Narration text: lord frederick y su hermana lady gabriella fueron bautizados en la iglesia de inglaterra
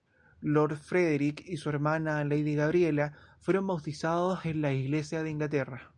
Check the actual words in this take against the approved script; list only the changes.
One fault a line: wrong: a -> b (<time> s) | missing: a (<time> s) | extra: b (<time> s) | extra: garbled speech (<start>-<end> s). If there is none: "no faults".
no faults